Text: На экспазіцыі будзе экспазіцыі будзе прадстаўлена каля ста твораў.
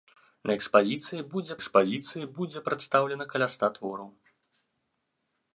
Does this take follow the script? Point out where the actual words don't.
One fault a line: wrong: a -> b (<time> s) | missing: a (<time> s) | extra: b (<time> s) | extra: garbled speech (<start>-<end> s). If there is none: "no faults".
no faults